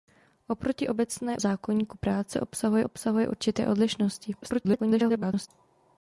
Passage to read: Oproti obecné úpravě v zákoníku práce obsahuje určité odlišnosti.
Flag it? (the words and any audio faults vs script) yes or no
yes